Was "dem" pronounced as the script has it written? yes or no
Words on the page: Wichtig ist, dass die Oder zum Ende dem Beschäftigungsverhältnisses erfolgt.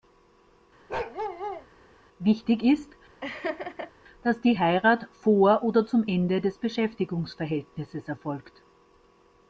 no